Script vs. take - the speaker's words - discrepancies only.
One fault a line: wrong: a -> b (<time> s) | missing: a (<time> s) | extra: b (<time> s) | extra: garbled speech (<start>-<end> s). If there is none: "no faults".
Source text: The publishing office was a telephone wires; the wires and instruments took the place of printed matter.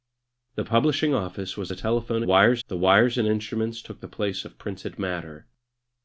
no faults